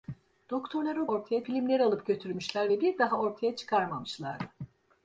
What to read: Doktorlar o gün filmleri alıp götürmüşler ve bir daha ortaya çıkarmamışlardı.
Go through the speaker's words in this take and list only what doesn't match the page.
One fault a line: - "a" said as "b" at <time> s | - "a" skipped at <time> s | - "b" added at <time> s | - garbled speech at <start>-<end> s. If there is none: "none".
- "gün" said as "ortaya" at 1.1 s